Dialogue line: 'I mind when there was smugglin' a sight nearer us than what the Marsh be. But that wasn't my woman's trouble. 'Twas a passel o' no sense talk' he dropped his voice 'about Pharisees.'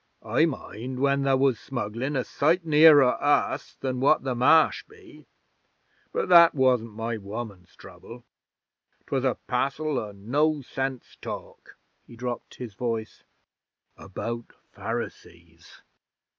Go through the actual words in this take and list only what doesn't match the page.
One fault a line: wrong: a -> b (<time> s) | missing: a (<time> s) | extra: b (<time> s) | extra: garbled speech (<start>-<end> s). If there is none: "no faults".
no faults